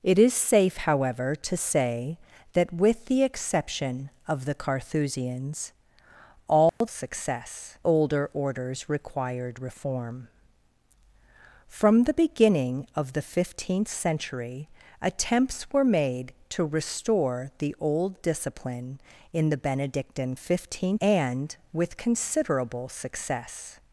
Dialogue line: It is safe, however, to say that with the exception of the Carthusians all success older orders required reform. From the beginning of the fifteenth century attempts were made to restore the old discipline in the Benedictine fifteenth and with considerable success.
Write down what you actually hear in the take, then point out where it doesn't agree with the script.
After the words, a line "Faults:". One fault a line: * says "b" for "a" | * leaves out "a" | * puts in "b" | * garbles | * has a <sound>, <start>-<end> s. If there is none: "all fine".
It is safe, however, to say that with the exception of the Carthusians all success older orders required reform. From the beginning of the fifteenth century attempts were made to restore the old discipline in the Benedictine fifteenth and with considerable success.
Faults:
* has a dropout, 6.7-6.8 s